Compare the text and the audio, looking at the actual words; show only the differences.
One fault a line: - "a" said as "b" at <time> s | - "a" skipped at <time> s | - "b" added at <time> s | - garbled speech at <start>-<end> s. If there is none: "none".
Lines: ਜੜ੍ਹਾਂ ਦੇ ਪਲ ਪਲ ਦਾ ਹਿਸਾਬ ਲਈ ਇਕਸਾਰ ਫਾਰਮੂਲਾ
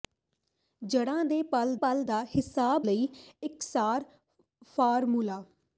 none